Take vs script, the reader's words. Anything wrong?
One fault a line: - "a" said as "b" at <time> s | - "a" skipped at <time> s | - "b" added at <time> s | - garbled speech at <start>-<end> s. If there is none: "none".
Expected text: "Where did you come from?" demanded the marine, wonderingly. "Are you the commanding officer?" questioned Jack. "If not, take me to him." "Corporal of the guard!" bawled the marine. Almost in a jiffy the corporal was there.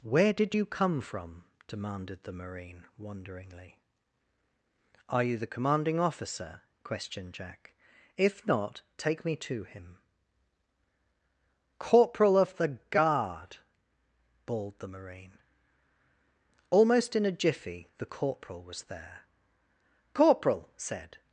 - "Corporal said" added at 20.1 s